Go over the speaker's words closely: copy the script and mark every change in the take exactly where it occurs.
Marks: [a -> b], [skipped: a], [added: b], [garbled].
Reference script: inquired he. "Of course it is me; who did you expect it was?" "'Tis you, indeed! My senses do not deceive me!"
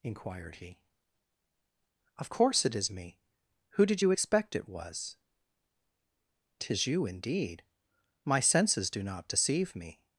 inquired he. "Of course it is me; who did you expect it was?" "'Tis you, indeed! My senses do not deceive me!"